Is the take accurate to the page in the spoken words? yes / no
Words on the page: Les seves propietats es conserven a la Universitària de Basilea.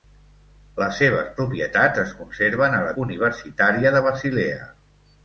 yes